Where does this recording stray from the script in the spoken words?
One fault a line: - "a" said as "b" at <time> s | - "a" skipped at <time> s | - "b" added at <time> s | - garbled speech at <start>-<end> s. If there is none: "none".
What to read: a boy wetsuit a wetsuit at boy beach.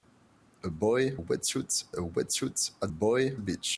none